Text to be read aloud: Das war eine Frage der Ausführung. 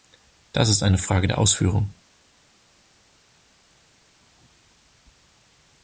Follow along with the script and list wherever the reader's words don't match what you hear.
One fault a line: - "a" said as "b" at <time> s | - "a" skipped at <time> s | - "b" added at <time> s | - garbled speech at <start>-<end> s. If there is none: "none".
- "war" said as "ist" at 0.7 s